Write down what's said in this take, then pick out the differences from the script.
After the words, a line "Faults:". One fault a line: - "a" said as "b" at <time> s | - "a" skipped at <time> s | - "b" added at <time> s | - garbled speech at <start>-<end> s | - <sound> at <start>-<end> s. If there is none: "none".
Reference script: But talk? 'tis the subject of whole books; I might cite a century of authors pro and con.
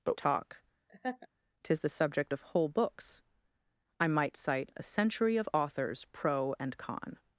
But talk? 'tis the subject of whole books; I might cite a century of authors pro and con.
Faults:
- laugh at 0.9-1.3 s